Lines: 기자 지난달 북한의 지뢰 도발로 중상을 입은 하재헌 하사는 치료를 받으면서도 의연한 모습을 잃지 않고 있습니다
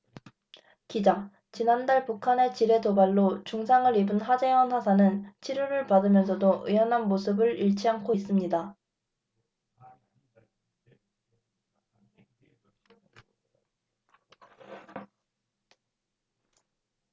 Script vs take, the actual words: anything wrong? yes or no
no